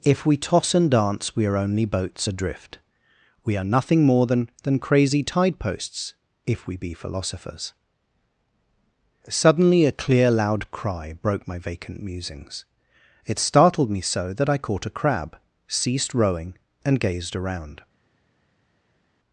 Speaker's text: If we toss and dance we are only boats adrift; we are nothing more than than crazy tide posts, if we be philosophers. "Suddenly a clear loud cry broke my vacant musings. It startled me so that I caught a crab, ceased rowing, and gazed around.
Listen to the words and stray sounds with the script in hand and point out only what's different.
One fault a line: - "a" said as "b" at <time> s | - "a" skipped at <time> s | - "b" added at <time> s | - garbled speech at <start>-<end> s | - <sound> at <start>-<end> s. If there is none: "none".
none